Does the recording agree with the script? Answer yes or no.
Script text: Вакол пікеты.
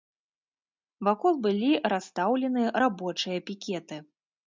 no